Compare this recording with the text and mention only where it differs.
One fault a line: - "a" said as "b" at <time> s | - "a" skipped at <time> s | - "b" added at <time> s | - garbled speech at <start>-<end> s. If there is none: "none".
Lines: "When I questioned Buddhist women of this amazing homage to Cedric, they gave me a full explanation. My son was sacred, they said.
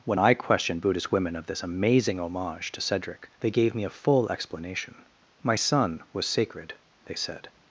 none